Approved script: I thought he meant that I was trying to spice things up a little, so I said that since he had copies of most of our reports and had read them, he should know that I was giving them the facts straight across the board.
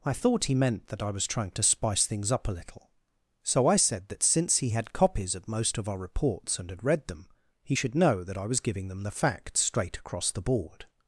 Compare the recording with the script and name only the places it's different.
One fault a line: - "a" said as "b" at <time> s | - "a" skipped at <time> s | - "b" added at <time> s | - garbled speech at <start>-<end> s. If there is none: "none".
none